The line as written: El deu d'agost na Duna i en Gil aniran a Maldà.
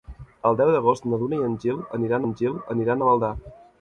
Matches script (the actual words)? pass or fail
fail